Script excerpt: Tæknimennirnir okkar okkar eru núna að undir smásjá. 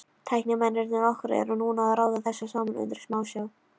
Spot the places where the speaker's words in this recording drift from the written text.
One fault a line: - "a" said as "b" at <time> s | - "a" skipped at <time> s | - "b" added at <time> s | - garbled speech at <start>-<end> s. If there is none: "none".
- "okkar" skipped at 1.3 s
- "raða þessu saman" added at 2.0 s